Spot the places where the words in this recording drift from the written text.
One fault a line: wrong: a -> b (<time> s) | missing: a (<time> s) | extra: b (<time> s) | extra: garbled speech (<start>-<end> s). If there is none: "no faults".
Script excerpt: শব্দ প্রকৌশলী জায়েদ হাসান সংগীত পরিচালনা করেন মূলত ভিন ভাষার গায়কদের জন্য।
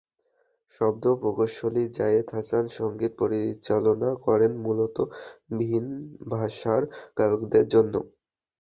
no faults